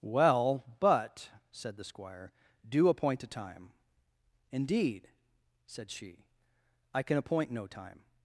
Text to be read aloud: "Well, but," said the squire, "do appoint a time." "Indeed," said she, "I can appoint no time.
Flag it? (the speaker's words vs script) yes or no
no